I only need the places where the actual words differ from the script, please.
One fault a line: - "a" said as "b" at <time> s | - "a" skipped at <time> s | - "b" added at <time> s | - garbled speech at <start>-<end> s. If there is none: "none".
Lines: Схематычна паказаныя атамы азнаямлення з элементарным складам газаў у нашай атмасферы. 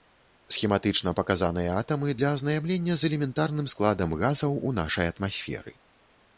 - "для" added at 2.2 s